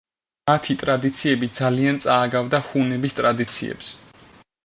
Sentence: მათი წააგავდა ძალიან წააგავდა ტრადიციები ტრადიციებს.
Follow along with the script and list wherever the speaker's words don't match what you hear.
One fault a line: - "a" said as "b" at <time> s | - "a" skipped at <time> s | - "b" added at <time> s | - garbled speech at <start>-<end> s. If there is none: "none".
- "წააგავდა" said as "ტრადიციები" at 0.8 s
- "ტრადიციები" said as "ჰუნების" at 2.7 s